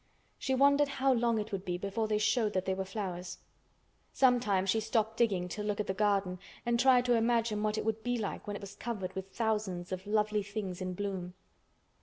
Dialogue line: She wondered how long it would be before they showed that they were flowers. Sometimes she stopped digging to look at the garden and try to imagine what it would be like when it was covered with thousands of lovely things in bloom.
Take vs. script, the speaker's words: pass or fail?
pass